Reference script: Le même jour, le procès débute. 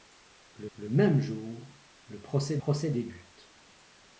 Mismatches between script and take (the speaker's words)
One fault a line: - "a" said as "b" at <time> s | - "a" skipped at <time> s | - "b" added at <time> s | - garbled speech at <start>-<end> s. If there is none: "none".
- "le" added at 0.7 s
- "procès" added at 2.6 s